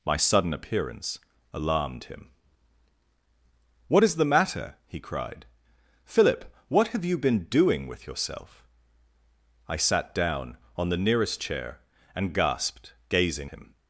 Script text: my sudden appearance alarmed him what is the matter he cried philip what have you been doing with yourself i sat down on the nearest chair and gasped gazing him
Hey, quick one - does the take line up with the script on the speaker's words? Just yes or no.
yes